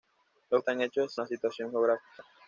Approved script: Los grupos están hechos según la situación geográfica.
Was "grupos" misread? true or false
true